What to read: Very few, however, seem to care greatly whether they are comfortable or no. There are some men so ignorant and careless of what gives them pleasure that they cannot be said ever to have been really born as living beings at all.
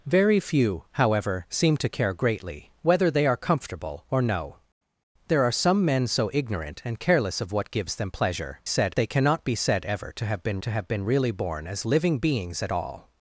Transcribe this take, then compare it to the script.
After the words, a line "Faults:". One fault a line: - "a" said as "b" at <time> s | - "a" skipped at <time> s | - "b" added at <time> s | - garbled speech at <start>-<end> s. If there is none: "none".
Very few, however, seem to care greatly whether they are comfortable or no. There are some men so ignorant and careless of what gives them pleasure said they cannot be said ever to have been to have been really born as living beings at all.
Faults:
- "that" said as "said" at 8.6 s
- "to have been" added at 10.6 s